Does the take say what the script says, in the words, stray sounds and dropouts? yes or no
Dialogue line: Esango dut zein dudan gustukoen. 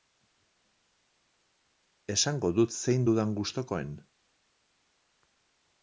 yes